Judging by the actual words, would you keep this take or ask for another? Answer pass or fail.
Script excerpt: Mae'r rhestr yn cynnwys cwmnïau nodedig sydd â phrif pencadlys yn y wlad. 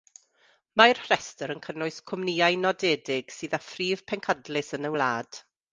pass